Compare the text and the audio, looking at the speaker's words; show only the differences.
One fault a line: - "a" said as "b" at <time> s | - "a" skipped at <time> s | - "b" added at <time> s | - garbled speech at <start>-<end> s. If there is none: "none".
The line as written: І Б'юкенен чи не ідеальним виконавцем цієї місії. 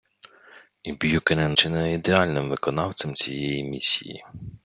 none